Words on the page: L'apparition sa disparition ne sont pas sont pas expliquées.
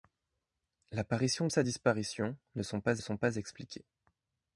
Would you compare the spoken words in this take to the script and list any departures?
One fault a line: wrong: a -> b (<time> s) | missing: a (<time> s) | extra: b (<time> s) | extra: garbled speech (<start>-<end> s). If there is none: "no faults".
no faults